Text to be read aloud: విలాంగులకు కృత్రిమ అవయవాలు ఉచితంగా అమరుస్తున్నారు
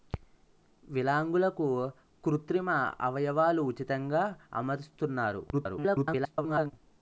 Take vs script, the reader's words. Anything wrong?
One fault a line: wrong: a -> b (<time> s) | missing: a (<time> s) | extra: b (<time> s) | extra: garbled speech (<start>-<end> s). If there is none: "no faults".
extra: garbled speech (5.5-6.7 s)